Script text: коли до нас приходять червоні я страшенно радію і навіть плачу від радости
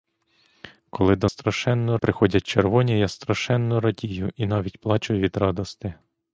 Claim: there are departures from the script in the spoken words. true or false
true